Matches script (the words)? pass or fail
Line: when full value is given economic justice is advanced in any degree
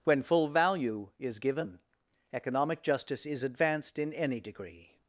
pass